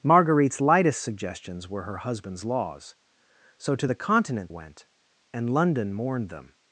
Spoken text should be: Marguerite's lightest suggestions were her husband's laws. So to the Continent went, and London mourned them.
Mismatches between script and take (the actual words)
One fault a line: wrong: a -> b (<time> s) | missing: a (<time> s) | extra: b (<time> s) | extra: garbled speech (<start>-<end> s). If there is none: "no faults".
no faults